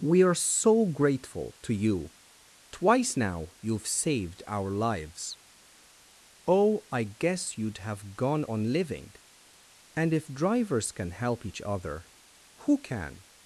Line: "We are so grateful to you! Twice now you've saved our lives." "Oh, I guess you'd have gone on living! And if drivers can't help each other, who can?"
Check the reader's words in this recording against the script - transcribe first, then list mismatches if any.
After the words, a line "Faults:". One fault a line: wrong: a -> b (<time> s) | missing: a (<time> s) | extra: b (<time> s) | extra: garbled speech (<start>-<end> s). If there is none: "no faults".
"We are so grateful to you! Twice now you've saved our lives." "Oh, I guess you'd have gone on living! And if drivers can help each other, who can?"
Faults:
wrong: can't -> can (10.9 s)